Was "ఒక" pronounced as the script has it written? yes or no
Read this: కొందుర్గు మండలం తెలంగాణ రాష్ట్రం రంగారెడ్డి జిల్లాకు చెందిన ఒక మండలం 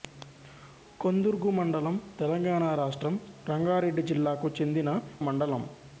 no